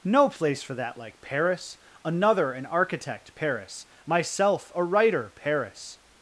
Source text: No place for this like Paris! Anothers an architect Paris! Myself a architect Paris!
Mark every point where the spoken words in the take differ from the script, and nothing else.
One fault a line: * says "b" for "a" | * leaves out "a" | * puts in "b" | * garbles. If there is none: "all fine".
* says "that" for "this"
* says "Another" for "Anothers"
* says "writer" for "architect"